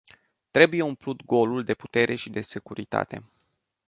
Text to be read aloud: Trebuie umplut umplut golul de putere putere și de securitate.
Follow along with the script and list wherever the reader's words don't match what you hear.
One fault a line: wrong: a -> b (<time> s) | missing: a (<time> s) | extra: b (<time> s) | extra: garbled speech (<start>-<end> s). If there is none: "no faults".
missing: umplut (1.2 s)
missing: putere (2.1 s)